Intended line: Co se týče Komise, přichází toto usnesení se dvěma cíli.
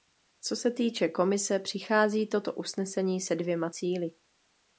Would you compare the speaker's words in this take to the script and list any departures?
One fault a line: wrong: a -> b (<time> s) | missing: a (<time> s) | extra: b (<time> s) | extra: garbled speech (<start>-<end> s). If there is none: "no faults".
no faults